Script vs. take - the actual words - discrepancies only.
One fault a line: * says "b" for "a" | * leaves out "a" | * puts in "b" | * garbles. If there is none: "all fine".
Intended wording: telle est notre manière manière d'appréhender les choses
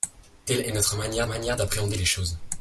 all fine